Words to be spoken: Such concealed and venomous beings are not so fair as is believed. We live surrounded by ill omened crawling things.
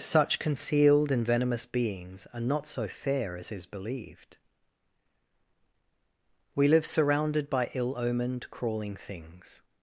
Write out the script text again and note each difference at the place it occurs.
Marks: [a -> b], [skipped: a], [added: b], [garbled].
Such concealed and venomous beings are not so fair as is believed. We live surrounded by ill omened crawling things.